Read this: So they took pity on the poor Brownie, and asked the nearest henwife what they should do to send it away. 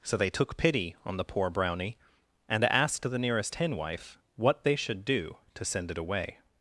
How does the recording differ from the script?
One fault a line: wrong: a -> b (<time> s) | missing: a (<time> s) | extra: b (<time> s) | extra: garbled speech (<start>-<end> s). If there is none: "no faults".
no faults